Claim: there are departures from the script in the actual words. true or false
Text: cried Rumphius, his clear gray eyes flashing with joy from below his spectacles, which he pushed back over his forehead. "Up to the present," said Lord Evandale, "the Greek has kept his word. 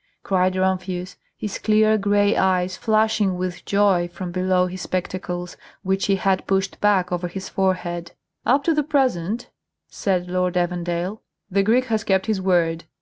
true